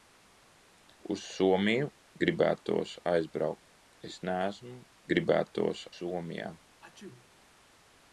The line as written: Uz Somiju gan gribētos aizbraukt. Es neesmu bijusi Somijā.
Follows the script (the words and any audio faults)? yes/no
no